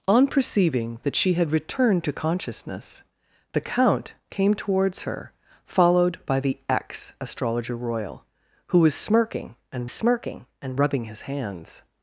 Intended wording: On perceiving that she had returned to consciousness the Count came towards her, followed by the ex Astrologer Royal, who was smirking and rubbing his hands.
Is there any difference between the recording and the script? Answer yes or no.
yes